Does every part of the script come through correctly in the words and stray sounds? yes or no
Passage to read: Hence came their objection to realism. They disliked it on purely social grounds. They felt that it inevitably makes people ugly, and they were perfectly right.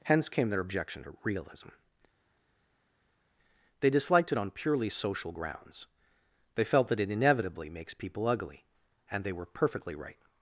yes